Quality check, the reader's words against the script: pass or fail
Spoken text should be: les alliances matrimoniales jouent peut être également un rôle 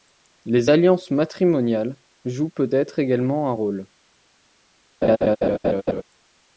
pass